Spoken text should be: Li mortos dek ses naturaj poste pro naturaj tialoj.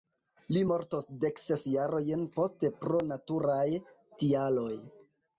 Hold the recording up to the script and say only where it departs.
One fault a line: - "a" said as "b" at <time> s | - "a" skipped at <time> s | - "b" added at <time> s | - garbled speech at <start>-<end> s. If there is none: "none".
- "naturaj" said as "jarojn" at 1.7 s